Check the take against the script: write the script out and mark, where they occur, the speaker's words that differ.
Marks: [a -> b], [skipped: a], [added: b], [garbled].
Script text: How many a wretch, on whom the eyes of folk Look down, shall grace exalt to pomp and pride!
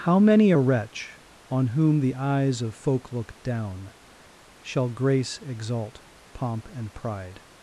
How many a wretch, on whom the eyes of folk Look down, shall grace exalt [skipped: to] pomp and pride!